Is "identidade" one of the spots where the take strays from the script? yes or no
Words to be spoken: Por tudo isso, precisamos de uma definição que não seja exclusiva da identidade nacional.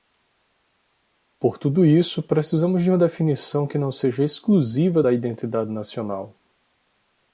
no